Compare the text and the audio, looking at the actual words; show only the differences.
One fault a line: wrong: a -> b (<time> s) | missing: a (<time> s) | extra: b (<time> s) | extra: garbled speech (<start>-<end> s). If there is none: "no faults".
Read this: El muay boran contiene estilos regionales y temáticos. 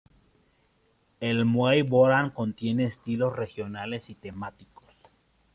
no faults